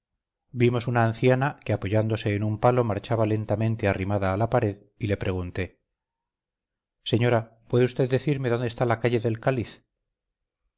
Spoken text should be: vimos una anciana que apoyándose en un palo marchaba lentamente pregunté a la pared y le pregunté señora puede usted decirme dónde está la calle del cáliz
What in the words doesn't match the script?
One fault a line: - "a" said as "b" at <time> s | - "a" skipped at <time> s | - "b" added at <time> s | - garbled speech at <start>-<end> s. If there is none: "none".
- "pregunté" said as "arrimada" at 3.9 s